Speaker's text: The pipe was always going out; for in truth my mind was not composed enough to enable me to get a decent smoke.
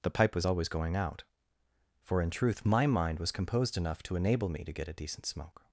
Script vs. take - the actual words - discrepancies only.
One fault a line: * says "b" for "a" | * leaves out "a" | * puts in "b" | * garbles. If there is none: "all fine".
* leaves out "not"